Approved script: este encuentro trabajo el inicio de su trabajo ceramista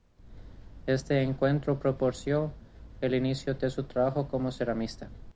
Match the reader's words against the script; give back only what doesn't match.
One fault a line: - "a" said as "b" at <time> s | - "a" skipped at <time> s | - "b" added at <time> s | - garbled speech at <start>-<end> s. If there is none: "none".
- "trabajo" said as "propició" at 1.8 s
- "como" added at 4.3 s